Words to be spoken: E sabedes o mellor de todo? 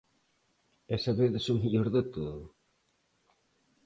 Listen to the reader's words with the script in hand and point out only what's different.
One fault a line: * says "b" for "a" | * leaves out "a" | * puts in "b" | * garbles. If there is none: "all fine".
all fine